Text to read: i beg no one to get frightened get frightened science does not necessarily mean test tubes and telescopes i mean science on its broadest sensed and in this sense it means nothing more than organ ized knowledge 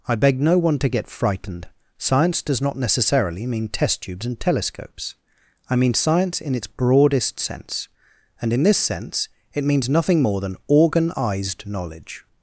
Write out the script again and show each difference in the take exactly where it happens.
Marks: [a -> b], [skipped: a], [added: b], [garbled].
i beg no one to get frightened [skipped: get frightened] science does not necessarily mean test tubes and telescopes i mean science [on -> in] its broadest [sensed -> sense] and in this sense it means nothing more than organ ized knowledge